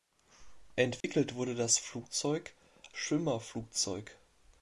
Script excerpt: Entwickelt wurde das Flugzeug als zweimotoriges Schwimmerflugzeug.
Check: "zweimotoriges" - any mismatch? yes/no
yes